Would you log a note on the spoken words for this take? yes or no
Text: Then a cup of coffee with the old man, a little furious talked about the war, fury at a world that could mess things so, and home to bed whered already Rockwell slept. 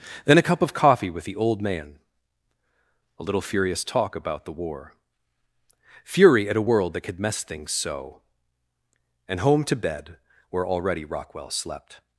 yes